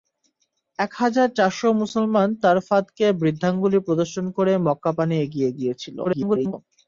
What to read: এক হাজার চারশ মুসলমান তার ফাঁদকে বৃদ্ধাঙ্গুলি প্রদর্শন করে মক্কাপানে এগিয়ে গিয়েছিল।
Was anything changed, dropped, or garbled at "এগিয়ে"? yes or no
no